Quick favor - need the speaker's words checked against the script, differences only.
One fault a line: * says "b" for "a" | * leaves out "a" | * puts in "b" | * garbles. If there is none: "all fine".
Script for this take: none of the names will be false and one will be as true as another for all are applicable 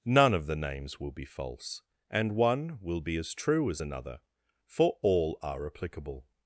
all fine